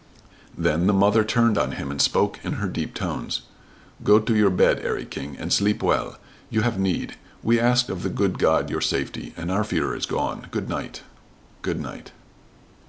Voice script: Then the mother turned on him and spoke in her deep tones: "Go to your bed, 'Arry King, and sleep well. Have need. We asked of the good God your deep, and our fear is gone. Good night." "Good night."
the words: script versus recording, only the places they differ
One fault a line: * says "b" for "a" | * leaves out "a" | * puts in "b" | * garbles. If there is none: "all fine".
* puts in "You"
* says "safety" for "deep"